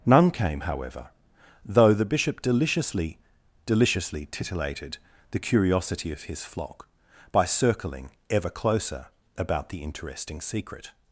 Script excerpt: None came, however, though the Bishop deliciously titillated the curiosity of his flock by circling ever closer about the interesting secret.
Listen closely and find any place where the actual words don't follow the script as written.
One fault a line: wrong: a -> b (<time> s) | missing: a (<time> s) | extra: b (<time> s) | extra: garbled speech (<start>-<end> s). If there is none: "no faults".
extra: deliciously (3.7 s)